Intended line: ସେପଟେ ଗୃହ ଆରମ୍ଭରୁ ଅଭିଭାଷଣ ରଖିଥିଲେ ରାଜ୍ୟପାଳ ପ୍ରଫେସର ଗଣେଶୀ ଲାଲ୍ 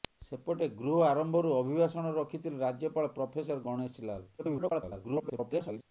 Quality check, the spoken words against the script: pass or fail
fail